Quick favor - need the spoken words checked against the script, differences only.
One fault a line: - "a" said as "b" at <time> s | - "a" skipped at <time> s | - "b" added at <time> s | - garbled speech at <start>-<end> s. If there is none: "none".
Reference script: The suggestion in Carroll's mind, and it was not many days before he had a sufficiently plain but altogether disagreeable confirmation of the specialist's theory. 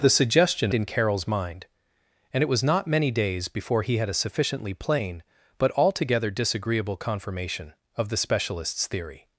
none